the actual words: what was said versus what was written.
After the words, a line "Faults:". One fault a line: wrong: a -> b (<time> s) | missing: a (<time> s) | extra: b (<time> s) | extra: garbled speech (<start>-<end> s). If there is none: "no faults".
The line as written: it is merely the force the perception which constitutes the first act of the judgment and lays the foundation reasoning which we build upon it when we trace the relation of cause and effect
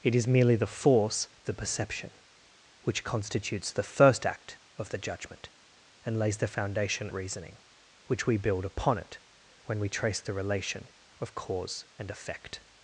it is merely the force the perception which constitutes the first act of the judgment and lays the foundation reasoning which we build upon it when we trace the relation of cause and effect
Faults:
no faults